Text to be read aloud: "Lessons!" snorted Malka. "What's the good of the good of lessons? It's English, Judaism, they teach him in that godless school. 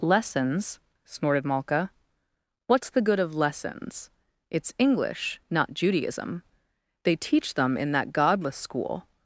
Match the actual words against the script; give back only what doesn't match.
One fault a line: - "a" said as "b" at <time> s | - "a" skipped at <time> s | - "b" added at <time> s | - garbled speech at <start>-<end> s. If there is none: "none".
- "the good of" skipped at 3.4 s
- "not" added at 5.5 s
- "him" said as "them" at 7.5 s